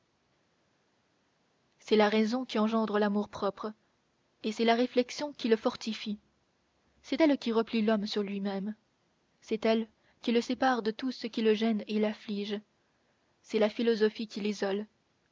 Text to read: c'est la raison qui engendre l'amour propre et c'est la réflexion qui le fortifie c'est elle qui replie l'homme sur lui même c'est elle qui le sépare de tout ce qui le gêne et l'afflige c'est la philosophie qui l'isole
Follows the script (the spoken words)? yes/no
yes